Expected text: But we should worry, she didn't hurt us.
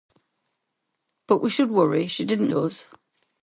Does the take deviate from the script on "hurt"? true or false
true